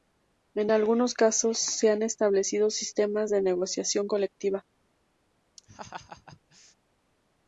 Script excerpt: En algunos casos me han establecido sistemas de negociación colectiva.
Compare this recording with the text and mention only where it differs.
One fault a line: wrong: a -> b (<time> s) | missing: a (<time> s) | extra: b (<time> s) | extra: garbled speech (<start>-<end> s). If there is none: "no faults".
wrong: me -> se (1.6 s)